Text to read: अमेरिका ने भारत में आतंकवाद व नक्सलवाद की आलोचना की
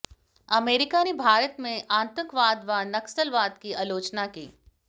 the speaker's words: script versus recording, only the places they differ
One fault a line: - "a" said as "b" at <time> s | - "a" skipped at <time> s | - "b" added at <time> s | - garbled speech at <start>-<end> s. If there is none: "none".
none